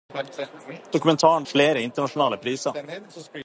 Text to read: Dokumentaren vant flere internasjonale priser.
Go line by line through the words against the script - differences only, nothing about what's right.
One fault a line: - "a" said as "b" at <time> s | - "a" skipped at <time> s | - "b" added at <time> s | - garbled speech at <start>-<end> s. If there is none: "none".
- "vant" skipped at 1.4 s